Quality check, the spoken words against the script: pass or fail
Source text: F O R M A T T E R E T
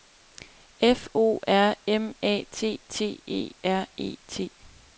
pass